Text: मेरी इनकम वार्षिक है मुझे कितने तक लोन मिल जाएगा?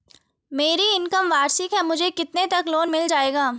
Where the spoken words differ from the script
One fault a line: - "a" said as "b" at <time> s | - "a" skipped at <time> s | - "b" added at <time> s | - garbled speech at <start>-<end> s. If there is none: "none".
none